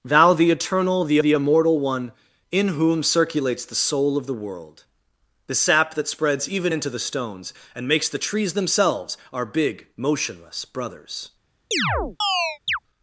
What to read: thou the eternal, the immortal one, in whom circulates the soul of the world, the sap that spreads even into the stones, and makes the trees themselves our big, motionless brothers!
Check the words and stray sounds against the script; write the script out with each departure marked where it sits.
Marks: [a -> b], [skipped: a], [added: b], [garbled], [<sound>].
thou the eternal, the [added: the] immortal one, in whom circulates the soul of the world, the sap that spreads even into the stones, and makes the trees themselves our big, motionless brothers! [chirp]